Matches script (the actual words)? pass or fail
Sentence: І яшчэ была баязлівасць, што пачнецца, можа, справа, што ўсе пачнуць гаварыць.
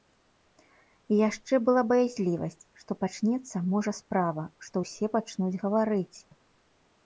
pass